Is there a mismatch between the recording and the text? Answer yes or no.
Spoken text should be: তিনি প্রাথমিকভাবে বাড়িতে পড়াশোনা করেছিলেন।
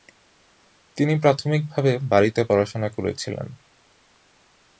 no